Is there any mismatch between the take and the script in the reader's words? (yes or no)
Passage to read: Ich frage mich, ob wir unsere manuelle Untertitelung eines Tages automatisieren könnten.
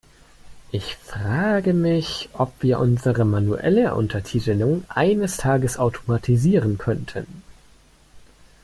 no